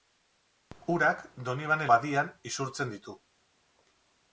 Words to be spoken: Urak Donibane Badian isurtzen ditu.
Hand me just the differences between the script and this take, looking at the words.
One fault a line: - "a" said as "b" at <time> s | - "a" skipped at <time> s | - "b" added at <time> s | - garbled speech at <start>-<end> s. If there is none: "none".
none